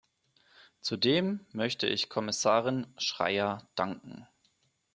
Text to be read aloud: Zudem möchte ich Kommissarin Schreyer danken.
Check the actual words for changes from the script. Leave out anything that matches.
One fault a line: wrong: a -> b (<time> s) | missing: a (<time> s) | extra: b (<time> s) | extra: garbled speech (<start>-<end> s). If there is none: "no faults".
no faults